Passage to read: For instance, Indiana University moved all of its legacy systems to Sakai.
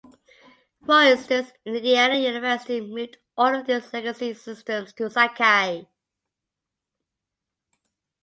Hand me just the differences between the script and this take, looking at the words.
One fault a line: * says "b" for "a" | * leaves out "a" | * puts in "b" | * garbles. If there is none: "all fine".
all fine